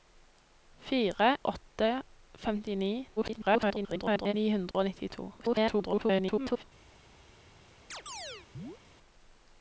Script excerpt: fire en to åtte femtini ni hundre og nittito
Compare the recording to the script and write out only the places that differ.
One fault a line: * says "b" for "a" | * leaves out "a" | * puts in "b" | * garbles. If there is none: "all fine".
* leaves out "en to"
* garbles
* garbles